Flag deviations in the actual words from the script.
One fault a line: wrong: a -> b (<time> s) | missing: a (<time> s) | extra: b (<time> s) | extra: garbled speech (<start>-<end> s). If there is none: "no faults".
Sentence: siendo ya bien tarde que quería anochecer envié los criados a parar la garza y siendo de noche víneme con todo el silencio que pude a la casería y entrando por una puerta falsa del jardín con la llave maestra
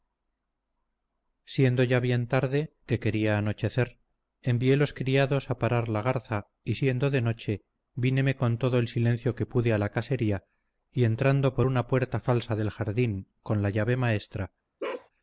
no faults